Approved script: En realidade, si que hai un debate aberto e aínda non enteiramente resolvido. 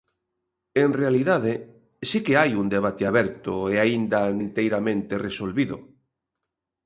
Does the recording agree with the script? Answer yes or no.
no